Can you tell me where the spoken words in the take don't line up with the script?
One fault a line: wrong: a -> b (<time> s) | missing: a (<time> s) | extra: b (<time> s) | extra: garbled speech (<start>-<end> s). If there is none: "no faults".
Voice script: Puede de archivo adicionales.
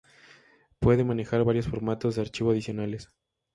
extra: manejar varios formatos (1.0 s)